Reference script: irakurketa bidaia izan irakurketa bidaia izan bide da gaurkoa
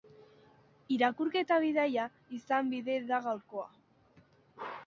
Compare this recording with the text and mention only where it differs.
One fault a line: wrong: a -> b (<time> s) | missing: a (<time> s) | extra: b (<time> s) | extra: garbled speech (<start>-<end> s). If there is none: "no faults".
missing: irakurketa bidaia izan (2.8 s)